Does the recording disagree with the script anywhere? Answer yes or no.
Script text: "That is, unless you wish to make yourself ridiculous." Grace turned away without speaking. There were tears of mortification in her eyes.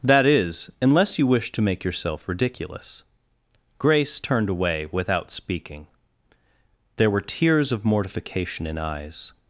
yes